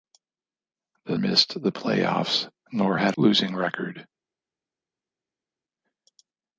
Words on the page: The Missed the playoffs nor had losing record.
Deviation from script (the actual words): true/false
false